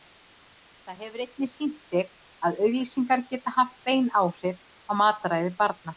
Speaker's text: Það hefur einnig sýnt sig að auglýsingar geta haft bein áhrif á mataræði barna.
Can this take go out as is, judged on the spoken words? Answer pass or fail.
pass